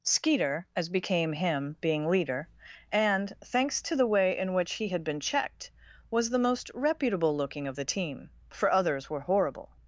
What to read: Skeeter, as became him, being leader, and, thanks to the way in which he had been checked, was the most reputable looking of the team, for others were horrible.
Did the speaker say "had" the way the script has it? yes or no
yes